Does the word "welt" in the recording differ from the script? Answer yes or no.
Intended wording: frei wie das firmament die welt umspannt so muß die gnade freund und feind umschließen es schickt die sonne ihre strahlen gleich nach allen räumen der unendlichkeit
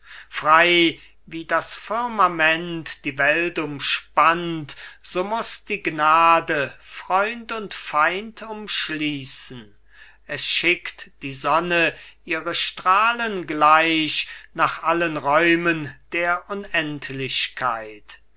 no